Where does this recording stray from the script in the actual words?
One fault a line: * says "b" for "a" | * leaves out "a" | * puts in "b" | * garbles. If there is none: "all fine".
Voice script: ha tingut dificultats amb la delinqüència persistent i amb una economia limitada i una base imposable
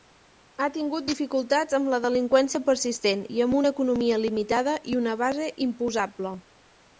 all fine